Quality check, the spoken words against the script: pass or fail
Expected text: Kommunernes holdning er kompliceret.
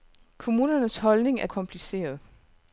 pass